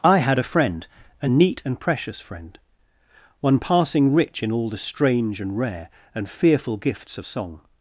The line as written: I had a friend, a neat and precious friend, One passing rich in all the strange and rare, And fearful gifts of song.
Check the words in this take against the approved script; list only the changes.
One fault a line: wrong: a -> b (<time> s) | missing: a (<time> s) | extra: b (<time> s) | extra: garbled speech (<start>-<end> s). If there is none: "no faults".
no faults